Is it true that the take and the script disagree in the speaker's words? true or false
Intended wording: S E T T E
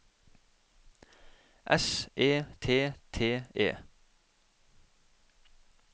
false